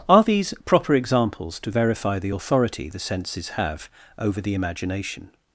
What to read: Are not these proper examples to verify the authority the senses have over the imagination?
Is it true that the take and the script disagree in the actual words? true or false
true